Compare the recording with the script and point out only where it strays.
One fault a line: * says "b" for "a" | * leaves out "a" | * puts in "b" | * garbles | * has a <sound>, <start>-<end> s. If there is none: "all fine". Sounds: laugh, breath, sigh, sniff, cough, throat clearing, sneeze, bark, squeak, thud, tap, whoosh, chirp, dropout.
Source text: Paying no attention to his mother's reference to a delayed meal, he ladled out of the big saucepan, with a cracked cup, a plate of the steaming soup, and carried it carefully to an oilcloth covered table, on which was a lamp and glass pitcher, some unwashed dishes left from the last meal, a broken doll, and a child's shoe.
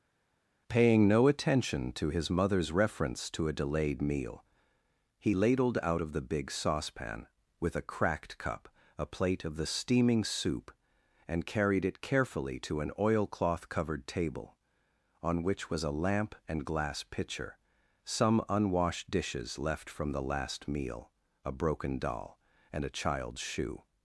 all fine